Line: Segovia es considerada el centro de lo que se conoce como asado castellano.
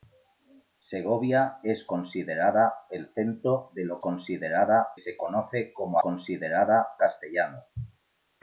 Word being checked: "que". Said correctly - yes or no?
no